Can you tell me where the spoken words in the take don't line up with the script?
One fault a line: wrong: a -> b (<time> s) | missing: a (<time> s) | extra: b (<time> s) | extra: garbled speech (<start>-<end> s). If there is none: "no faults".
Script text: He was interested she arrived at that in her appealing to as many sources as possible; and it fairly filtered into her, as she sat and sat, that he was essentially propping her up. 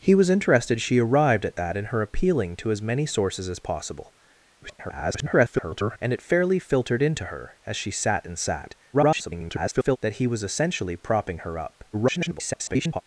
extra: garbled speech (4.6-6.0 s)
extra: garbled speech (8.9-10.0 s)
extra: garbled speech (11.9-13.0 s)